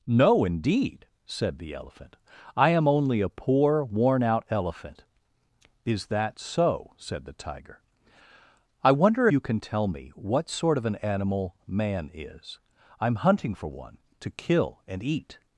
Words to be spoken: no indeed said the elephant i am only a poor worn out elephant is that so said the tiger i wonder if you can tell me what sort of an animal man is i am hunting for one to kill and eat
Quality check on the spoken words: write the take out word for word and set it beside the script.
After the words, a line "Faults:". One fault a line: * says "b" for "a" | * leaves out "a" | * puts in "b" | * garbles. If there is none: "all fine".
no indeed said the elephant i am only a poor worn out elephant is that so said the tiger i wonder you can tell me what sort of an animal man is i am hunting for one to kill and eat
Faults:
* leaves out "if"